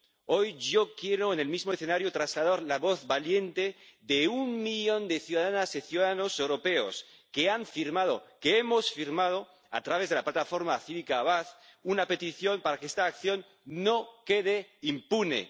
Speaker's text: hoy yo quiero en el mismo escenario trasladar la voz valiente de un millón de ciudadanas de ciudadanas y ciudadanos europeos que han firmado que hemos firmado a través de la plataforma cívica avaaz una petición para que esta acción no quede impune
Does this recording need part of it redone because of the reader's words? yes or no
yes